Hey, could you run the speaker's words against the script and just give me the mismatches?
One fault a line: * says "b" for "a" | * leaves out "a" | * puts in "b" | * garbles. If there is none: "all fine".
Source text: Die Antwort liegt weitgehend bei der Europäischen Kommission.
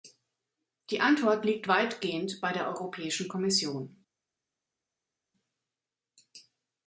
all fine